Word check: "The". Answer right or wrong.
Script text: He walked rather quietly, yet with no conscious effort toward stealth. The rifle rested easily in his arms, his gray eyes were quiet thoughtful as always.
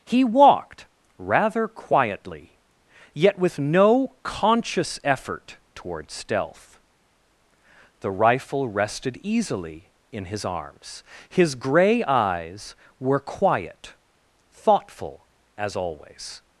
right